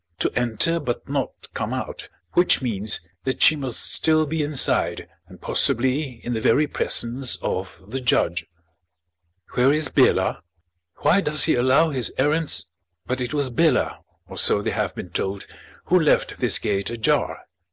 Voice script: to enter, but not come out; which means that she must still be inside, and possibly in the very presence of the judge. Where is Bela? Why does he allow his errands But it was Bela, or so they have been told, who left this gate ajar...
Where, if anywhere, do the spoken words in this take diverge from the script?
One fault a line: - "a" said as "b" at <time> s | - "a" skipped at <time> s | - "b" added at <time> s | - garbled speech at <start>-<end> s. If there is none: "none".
none